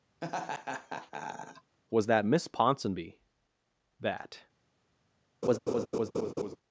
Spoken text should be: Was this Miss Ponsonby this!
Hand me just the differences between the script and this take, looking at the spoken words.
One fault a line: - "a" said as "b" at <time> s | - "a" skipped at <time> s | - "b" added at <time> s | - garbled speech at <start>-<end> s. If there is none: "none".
- "this" said as "that" at 2.1 s
- "this" said as "that" at 4.0 s